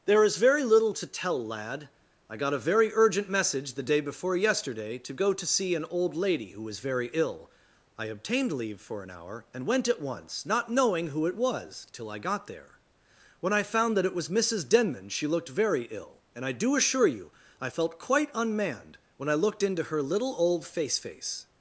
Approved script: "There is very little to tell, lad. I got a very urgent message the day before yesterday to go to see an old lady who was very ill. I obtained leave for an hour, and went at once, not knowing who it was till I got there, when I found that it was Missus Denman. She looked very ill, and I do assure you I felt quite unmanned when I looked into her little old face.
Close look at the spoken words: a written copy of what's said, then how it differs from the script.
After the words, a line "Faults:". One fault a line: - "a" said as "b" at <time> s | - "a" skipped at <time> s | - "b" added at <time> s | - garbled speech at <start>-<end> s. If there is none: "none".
"There is very little to tell, lad. I got a very urgent message the day before yesterday to go to see an old lady who was very ill. I obtained leave for an hour, and went at once, not knowing who it was till I got there, when I found that it was Missus Denman. She looked very ill, and I do assure you I felt quite unmanned when I looked into her little old face face.
Faults:
- "face" added at 21.0 s